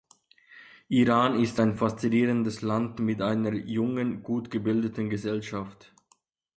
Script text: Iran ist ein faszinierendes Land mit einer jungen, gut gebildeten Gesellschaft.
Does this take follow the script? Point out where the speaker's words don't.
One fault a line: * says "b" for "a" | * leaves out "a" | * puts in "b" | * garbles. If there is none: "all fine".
all fine